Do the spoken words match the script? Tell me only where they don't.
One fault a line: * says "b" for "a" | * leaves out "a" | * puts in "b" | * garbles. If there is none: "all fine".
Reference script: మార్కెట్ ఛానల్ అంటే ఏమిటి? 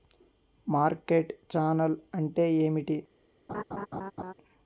all fine